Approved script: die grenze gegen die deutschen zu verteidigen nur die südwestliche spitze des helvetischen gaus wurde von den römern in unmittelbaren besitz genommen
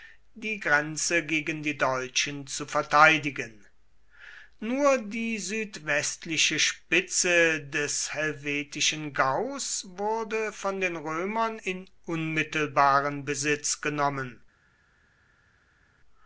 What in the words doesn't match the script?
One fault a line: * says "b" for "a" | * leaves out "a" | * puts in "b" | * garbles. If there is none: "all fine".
all fine